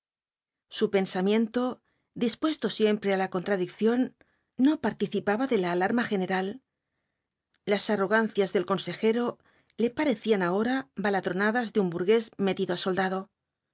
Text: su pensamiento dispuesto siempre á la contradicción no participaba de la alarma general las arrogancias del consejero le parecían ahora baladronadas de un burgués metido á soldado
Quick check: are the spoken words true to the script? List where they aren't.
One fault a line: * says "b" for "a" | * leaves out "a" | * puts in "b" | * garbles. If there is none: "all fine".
all fine